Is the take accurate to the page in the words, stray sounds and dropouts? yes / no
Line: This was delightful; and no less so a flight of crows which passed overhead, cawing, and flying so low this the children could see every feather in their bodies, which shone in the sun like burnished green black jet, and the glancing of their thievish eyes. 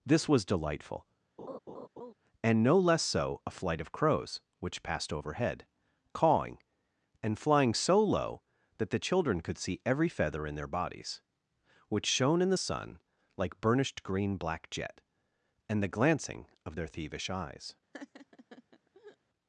no